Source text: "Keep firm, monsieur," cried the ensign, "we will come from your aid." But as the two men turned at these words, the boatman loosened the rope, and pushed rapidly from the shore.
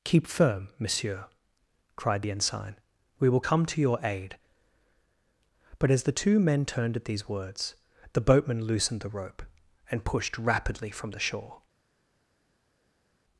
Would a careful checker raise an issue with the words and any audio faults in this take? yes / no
yes